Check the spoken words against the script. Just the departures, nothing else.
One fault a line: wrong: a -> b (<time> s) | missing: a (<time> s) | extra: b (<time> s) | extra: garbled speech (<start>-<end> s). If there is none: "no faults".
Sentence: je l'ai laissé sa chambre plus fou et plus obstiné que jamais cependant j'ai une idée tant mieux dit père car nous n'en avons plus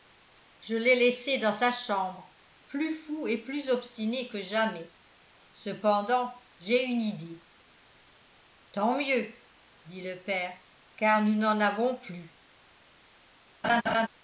extra: dans (1.4 s)
extra: le (10.0 s)